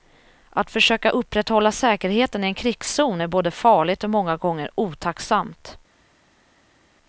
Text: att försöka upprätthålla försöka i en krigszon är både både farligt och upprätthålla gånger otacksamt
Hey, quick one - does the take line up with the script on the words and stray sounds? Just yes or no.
no